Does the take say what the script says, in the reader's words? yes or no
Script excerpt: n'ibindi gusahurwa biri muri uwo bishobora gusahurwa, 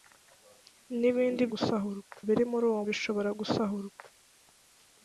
yes